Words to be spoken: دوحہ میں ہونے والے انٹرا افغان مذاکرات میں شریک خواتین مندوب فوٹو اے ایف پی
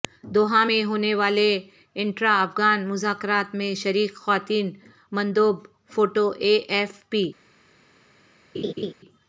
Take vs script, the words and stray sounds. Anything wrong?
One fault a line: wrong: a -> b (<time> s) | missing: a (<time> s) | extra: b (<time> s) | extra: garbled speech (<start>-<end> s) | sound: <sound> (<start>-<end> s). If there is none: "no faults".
sound: laugh (8.5-8.9 s)